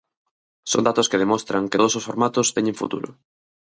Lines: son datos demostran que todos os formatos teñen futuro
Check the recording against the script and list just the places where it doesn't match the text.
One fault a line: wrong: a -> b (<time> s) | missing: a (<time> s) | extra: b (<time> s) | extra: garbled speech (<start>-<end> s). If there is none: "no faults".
extra: que (1.1 s)